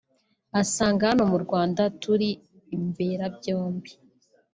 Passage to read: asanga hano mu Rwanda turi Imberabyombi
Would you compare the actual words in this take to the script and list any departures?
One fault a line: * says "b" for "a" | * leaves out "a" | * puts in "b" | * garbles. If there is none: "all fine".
all fine